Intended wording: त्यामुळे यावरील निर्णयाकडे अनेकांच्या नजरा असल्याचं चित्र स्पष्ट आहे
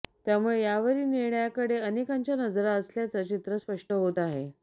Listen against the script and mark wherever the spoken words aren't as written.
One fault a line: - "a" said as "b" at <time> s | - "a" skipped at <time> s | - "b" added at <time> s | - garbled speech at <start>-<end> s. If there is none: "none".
- "होत" added at 3.9 s